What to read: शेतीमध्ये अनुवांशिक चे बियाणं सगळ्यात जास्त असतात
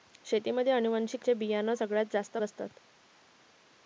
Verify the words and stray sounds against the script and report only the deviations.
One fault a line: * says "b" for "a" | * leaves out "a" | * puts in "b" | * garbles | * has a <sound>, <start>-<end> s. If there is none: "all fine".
all fine